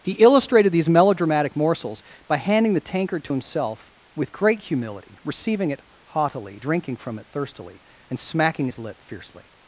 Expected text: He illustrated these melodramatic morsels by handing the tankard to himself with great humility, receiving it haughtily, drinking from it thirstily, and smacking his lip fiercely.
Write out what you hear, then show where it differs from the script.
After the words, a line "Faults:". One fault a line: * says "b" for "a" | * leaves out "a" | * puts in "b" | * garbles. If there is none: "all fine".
He illustrated these melodramatic morsels by handing the tankard to himself with great humility, receiving it haughtily, drinking from it thirstily, and smacking his lip fiercely.
Faults:
all fine